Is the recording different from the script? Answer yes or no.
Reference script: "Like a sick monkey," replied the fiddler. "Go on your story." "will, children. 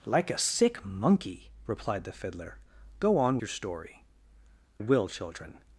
no